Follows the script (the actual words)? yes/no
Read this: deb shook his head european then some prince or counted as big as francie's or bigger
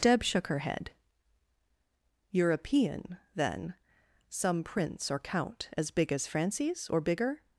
no